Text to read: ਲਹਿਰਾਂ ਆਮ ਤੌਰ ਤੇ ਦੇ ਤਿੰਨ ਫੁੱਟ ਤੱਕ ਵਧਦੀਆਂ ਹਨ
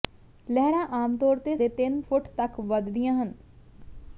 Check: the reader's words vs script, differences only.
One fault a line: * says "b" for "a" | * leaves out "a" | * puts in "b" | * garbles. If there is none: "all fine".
all fine